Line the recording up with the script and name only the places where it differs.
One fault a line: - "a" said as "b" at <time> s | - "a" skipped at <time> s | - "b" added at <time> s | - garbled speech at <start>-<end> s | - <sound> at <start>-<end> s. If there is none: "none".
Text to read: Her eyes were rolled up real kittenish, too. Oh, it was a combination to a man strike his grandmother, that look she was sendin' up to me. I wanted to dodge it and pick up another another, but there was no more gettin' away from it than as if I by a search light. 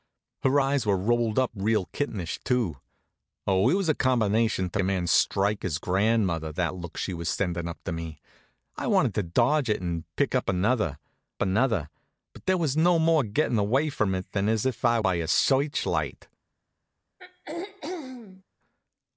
- throat clearing at 17.2-18.4 s